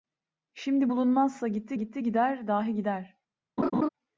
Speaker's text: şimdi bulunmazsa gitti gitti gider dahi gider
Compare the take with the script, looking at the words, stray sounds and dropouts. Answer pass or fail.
fail